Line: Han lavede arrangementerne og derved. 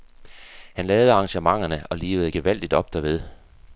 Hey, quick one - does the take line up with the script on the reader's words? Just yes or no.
no